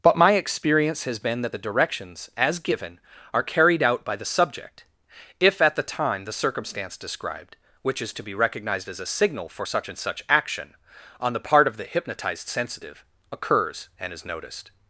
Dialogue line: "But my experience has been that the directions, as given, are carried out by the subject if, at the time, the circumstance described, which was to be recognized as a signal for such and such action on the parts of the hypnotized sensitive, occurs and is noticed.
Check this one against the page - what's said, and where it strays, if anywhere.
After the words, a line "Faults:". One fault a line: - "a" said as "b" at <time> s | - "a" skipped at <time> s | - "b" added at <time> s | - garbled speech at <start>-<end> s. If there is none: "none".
"But my experience has been that the directions, as given, are carried out by the subject if, at the time, the circumstance described, which is to be recognized as a signal for such and such action on the part of the hypnotized sensitive, occurs and is noticed.
Faults:
- "was" said as "is" at 8.0 s
- "parts" said as "part" at 11.4 s